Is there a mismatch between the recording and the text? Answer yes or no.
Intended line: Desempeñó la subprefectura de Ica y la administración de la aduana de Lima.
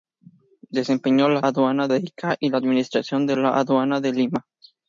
yes